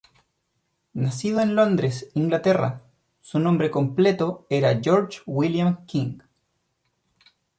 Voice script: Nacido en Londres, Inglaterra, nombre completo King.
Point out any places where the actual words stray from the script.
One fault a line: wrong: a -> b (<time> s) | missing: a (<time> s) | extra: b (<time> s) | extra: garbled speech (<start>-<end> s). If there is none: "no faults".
extra: su (3.2 s)
extra: era George William (4.5 s)